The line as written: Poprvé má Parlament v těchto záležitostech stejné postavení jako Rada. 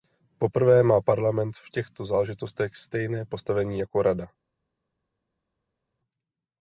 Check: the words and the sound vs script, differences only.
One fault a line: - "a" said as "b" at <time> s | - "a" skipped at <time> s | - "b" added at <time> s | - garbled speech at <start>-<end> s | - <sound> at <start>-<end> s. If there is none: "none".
none